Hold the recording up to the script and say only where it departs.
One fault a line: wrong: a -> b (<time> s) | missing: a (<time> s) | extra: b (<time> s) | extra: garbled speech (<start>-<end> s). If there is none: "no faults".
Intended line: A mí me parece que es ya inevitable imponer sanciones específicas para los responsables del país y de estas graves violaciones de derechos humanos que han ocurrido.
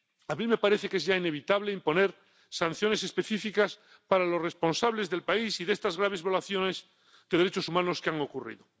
no faults